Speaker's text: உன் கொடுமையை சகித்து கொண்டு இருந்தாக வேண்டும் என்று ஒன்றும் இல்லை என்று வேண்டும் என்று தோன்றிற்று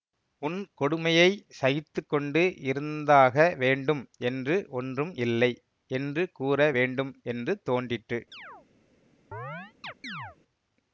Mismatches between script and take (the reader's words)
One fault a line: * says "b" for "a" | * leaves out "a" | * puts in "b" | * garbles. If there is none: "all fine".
* puts in "கூற"